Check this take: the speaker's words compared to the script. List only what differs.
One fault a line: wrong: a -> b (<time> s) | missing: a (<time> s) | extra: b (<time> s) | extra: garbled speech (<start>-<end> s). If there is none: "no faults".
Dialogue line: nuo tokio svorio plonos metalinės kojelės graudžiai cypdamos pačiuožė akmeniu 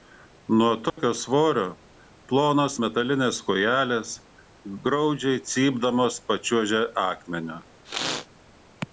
no faults